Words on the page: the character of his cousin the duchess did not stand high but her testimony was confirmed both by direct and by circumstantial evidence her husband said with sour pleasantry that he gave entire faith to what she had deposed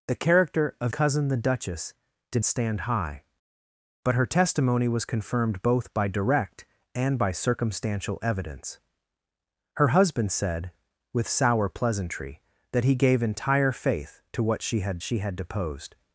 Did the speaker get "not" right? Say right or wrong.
wrong